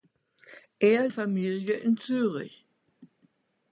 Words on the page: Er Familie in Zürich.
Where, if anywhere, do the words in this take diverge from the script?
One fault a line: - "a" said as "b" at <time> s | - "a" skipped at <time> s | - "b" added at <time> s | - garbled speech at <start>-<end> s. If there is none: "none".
none